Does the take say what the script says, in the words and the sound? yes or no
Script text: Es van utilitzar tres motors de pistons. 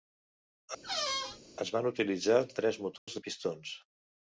no